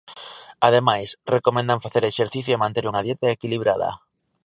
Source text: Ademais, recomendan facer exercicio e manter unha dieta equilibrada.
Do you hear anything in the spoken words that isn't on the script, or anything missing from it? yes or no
no